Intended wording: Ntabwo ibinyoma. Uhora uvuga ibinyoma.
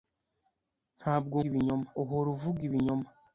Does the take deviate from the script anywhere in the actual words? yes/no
no